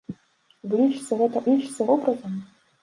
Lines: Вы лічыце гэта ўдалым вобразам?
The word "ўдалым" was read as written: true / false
false